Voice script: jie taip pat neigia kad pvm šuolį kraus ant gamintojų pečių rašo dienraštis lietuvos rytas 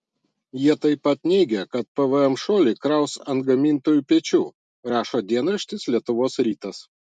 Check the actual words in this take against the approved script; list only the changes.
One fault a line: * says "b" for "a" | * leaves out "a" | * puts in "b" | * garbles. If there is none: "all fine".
all fine